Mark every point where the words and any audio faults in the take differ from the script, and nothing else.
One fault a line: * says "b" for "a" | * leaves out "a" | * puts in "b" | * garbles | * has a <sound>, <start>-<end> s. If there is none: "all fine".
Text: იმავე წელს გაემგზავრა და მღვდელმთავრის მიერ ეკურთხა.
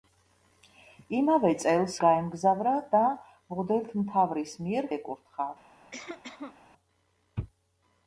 * has a cough, 5.9-6.6 s